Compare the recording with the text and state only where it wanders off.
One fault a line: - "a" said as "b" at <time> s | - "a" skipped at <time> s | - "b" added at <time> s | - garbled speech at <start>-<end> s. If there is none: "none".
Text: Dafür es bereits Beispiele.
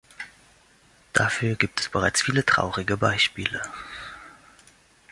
- "gibt" added at 1.6 s
- "viele traurige" added at 2.2 s